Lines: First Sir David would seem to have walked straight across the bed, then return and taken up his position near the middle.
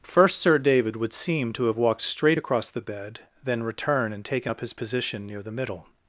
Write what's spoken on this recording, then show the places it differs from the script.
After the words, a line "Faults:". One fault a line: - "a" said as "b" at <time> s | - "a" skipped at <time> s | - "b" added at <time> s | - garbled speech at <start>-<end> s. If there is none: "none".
First Sir David would seem to have walked straight across the bed, then return and taken up his position near the middle.
Faults:
none